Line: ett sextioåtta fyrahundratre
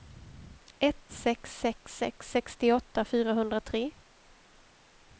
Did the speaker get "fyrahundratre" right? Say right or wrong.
right